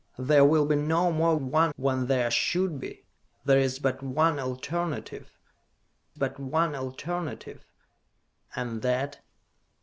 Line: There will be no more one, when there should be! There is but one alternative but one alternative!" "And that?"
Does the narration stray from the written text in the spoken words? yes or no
no